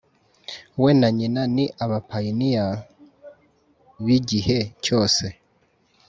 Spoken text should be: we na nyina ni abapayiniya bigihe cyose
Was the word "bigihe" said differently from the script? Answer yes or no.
no